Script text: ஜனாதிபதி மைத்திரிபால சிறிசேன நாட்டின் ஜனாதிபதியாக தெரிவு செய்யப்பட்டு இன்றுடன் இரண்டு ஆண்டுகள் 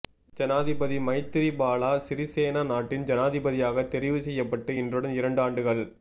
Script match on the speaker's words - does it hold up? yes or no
yes